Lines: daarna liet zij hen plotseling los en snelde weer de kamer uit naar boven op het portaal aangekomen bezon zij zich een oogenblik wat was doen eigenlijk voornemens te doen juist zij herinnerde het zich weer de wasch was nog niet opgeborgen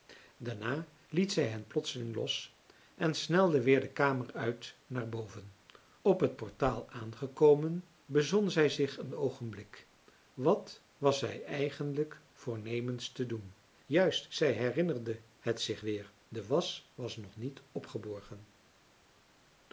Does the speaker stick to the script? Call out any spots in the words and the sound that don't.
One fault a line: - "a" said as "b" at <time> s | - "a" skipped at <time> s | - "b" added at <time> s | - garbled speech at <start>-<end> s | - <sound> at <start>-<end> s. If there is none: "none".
- "doen" said as "zij" at 11.2 s